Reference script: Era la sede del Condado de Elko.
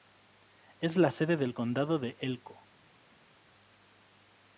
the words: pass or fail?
fail